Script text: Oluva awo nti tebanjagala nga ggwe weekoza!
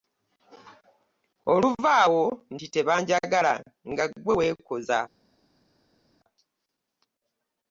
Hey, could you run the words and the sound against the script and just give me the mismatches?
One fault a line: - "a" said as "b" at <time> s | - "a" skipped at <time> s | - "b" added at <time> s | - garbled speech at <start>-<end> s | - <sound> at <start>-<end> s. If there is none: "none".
none